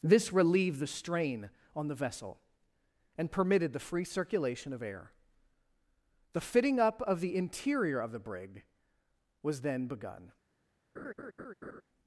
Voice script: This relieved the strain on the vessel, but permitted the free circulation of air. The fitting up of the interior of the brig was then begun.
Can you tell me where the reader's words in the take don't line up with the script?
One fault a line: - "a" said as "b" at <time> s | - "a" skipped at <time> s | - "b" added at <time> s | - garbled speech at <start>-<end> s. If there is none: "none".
- "but" said as "and" at 3.2 s